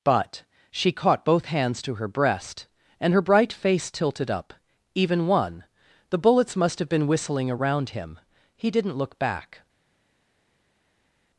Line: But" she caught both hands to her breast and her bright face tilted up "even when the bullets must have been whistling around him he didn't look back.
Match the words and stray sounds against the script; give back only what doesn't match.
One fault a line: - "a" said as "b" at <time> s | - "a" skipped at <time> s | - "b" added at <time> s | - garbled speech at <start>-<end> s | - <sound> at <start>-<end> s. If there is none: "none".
- "when" said as "one" at 5.3 s